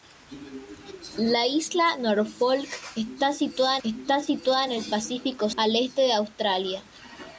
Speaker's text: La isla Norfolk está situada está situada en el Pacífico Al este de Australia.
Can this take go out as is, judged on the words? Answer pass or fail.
pass